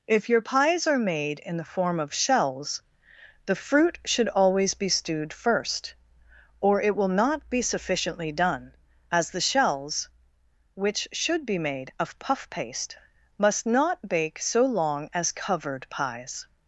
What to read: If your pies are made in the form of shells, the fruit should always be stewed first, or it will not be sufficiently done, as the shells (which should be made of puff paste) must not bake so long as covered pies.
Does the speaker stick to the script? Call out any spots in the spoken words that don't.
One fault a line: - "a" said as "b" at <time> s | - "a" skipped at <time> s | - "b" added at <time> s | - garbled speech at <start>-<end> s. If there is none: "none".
none